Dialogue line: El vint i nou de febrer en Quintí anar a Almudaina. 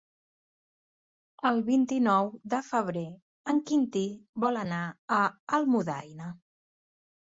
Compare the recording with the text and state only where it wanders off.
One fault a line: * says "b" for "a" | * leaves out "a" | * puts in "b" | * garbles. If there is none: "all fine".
* puts in "vol"